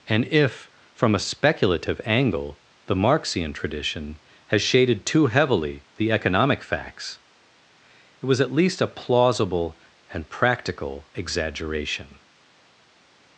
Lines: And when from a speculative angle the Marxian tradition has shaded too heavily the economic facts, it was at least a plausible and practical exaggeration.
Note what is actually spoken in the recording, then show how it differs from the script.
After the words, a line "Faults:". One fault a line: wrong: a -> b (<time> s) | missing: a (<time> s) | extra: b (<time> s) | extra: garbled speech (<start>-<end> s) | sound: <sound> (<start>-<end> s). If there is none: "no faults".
And if from a speculative angle the Marxian tradition has shaded too heavily the economic facts, it was at least a plausible and practical exaggeration.
Faults:
wrong: when -> if (0.3 s)